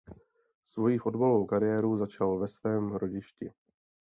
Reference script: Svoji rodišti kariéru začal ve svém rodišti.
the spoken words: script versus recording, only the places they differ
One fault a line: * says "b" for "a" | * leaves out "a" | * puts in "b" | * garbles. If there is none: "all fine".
* says "fotbalovou" for "rodišti"